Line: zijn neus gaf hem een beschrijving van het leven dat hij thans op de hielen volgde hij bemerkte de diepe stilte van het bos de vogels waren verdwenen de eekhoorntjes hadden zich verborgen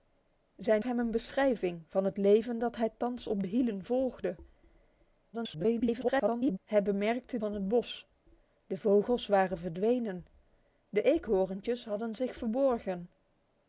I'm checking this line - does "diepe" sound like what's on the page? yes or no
no